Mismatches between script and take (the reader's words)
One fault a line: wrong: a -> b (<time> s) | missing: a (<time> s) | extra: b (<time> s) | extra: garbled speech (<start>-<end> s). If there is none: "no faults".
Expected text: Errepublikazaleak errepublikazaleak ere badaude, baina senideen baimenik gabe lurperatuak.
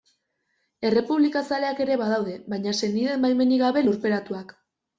missing: errepublikazaleak (1.8 s)